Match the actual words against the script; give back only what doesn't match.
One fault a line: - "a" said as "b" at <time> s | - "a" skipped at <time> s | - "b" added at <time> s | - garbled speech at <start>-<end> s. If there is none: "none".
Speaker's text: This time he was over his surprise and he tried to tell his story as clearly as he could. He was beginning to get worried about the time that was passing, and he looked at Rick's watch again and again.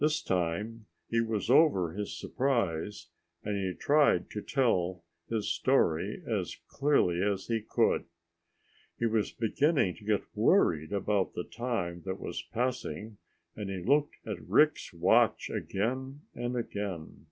none